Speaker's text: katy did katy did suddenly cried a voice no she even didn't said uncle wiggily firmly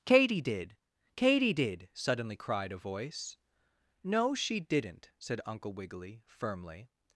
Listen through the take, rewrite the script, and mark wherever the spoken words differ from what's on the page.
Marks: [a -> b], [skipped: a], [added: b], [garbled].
katy did katy did suddenly cried a voice no she [skipped: even] didn't said uncle wiggily firmly